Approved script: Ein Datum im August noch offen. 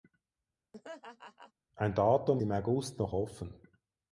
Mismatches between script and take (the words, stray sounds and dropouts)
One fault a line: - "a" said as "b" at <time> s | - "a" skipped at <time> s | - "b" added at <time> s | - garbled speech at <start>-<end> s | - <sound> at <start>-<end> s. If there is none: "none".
- laugh at 0.7-1.5 s